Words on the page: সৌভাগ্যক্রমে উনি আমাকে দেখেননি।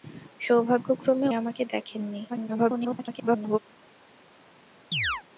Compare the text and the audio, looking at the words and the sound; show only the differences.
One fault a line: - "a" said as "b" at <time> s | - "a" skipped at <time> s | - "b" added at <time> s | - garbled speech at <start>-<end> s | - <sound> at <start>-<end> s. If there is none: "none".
- "উনি" skipped at 1.3 s
- garbled speech at 2.3-3.6 s
- chirp at 4.9-5.2 s